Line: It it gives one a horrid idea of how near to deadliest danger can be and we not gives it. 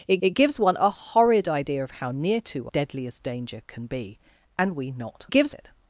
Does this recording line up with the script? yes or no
yes